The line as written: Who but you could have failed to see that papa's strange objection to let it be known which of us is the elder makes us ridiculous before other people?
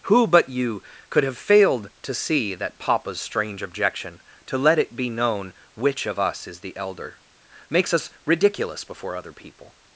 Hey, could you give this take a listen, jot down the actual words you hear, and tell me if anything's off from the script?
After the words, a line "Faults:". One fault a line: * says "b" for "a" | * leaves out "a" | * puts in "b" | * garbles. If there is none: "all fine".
Who but you could have failed to see that papa's strange objection to let it be known which of us is the elder makes us ridiculous before other people?
Faults:
all fine